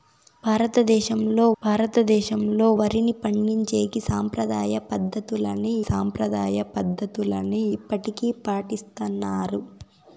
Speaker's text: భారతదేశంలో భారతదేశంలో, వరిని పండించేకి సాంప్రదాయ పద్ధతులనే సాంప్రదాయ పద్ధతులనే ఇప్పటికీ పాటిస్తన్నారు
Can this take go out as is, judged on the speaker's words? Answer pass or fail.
pass